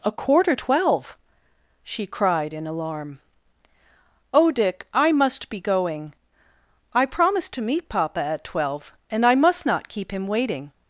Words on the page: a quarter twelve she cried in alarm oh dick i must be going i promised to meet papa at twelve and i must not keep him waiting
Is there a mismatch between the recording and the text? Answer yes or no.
no